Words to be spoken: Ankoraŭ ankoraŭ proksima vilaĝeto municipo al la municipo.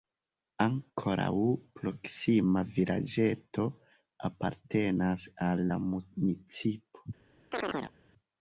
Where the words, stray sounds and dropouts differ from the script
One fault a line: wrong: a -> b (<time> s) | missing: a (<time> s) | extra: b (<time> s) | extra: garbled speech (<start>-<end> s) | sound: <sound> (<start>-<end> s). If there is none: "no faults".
missing: ankoraŭ (1.3 s)
wrong: municipo -> apartenas (4.3 s)
sound: chirp (7.5-7.9 s)